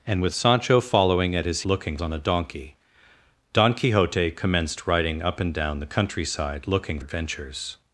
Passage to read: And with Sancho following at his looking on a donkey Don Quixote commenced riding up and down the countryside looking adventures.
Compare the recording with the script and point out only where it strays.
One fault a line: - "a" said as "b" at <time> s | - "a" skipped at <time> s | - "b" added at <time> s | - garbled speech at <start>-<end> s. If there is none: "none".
none